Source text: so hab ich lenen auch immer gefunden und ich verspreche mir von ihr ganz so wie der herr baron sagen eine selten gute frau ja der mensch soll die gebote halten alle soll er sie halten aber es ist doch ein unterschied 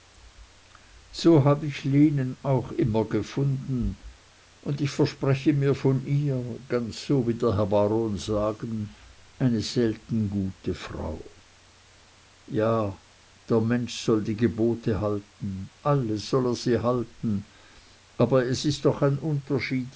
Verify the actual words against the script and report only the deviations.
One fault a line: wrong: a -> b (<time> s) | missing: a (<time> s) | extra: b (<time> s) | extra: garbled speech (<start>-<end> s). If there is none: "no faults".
no faults